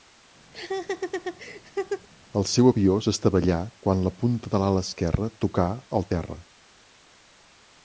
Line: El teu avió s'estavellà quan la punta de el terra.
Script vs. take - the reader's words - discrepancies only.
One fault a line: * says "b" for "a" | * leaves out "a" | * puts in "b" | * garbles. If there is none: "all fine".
* says "seu" for "teu"
* puts in "l'ala esquerra tocà"